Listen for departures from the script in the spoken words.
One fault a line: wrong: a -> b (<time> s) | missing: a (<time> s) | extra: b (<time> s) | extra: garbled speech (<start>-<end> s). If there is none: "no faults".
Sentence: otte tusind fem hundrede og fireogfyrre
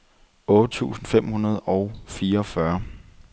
no faults